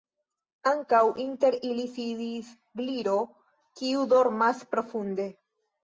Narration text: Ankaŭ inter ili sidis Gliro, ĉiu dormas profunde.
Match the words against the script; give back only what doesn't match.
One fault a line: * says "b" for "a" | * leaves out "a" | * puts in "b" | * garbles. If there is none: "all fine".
* says "kiu" for "ĉiu"